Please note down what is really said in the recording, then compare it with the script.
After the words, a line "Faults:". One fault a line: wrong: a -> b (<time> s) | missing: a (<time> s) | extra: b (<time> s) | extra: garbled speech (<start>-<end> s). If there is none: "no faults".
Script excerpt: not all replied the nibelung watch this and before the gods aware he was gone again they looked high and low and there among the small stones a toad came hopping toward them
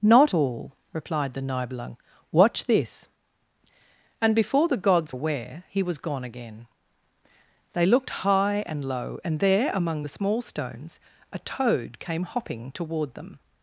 not all replied the nibelung watch this and before the gods aware he was gone again they looked high and low and there among the small stones a toad came hopping toward them
Faults:
no faults